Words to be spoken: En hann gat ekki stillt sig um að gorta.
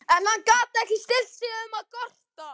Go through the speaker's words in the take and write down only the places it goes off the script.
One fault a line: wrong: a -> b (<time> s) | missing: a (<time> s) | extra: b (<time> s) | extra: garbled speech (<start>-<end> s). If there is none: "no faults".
no faults